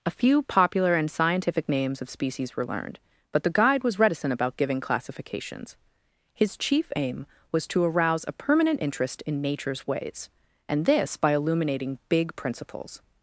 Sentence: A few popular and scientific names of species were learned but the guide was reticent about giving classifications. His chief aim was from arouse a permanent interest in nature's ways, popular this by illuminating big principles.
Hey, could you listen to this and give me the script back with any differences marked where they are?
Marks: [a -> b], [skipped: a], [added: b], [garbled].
A few popular and scientific names of species were learned but the guide was reticent about giving classifications. His chief aim was [from -> to] arouse a permanent interest in nature's ways, [popular -> and] this by illuminating big principles.